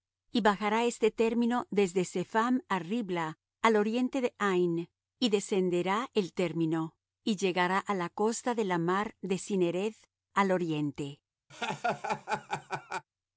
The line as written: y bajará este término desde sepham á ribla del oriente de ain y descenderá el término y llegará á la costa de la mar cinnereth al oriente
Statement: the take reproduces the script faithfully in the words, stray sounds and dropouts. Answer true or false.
false